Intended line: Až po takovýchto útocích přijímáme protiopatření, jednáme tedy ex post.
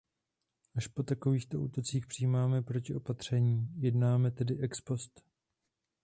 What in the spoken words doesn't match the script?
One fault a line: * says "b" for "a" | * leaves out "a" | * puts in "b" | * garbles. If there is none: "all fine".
all fine